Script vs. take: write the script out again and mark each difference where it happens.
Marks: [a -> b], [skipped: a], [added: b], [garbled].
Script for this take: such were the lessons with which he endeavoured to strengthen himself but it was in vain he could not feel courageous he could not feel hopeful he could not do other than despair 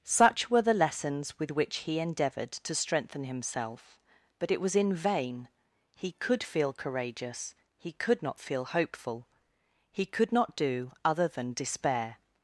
such were the lessons with which he endeavoured to strengthen himself but it was in vain he could [skipped: not] feel courageous he could not feel hopeful he could not do other than despair